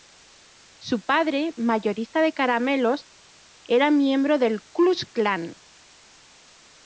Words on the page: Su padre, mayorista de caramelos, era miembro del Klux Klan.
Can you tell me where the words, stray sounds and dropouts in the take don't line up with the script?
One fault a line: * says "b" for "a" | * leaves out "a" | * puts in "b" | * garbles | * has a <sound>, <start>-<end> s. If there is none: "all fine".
all fine